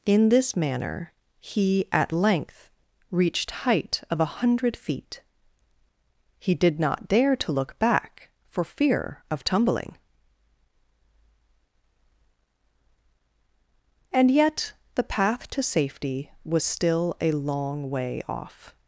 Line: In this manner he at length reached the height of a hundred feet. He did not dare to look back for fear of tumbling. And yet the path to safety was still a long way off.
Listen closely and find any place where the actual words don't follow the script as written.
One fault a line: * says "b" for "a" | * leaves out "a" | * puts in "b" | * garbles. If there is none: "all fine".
* leaves out "the"